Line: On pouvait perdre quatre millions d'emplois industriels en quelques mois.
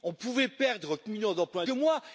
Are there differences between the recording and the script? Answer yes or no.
yes